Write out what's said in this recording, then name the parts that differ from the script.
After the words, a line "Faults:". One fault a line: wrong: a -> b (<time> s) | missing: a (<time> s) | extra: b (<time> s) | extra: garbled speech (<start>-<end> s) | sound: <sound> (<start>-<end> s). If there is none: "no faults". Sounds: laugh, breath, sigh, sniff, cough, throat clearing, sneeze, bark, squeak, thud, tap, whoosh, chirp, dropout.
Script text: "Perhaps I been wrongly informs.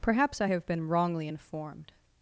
"Perhaps I have been wrongly informed.
Faults:
extra: have (0.5 s)
wrong: informs -> informed (1.3 s)